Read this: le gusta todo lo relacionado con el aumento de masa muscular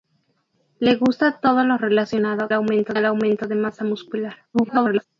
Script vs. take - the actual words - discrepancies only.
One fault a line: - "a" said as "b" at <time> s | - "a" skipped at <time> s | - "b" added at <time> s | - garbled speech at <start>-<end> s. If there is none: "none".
- "con" said as "aumento" at 2.5 s
- garbled speech at 4.5-5.1 s